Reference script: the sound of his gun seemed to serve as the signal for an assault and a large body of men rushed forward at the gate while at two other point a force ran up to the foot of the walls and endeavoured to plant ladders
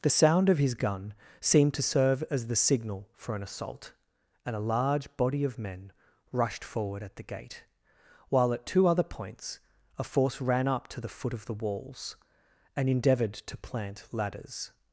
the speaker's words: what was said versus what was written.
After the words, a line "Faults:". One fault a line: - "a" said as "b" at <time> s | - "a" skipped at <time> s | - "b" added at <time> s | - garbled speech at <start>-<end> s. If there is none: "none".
the sound of his gun seemed to serve as the signal for an assault and a large body of men rushed forward at the gate while at two other points a force ran up to the foot of the walls and endeavoured to plant ladders
Faults:
- "point" said as "points" at 9.0 s